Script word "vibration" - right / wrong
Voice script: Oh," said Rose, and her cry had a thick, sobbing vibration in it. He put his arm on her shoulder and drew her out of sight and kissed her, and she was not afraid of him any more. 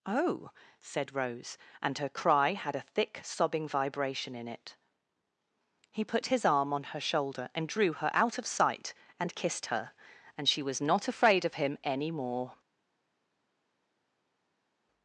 right